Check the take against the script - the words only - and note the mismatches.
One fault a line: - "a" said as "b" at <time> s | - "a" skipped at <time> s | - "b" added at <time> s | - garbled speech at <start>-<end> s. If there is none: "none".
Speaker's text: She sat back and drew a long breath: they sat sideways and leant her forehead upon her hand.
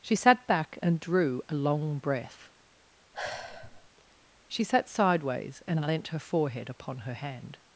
- "they" said as "she" at 4.5 s